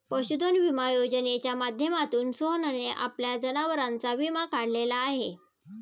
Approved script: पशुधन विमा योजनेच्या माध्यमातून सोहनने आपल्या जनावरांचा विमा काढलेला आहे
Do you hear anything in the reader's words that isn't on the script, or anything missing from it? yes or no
no